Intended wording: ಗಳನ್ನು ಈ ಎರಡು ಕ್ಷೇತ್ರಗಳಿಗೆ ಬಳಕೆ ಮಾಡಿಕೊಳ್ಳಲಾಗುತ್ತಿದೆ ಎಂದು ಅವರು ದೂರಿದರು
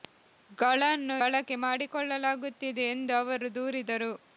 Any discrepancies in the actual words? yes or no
yes